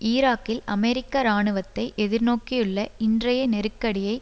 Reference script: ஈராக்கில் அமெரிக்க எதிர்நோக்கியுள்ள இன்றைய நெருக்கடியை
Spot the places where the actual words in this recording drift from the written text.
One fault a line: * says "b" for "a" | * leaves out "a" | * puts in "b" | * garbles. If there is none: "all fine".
* puts in "இராணுவத்தை"